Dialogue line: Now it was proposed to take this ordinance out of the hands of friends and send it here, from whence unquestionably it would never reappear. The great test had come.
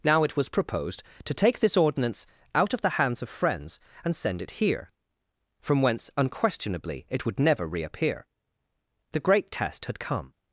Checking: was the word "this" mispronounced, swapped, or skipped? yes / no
no